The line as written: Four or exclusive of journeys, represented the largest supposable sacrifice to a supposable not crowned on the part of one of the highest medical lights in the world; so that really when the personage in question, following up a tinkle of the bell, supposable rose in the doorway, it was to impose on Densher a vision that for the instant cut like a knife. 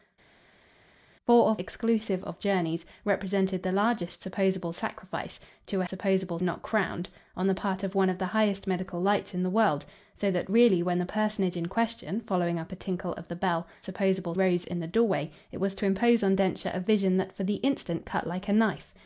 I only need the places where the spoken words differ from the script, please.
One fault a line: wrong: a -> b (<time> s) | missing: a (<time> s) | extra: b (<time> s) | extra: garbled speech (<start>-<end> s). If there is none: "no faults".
no faults